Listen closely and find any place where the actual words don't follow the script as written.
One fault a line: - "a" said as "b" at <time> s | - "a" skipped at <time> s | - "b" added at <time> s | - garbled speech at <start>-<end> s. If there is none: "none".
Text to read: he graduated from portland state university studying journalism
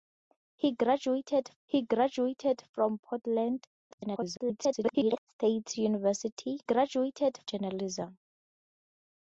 - "he graduated" added at 1.7 s
- garbled speech at 3.9-5.2 s
- "studying" said as "graduated" at 6.6 s